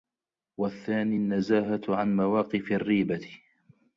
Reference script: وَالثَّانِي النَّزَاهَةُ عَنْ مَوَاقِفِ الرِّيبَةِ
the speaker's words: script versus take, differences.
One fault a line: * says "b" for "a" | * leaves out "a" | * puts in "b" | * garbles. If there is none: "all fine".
all fine